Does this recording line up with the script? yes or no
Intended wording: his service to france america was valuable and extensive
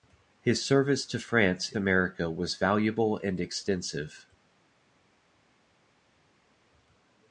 yes